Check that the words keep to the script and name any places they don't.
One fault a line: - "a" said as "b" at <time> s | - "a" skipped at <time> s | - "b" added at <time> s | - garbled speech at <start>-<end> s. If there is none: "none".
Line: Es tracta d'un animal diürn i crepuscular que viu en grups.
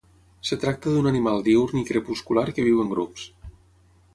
none